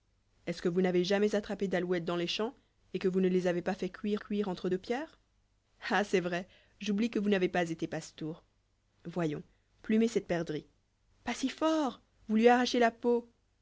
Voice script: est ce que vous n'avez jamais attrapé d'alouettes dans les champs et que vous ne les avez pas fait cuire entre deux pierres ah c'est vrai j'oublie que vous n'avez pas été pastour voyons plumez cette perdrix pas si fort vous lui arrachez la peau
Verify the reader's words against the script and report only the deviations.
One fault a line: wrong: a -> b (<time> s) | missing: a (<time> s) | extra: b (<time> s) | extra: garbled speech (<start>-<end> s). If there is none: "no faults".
extra: cuire (4.2 s)